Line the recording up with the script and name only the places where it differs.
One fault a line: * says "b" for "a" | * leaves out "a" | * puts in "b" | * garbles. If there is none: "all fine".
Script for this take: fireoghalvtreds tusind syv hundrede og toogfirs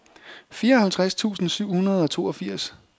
all fine